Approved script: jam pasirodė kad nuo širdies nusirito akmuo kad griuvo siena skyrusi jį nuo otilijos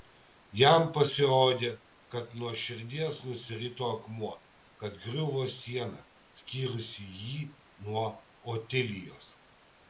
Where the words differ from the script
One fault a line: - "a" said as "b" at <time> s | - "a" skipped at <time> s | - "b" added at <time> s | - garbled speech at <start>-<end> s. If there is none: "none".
none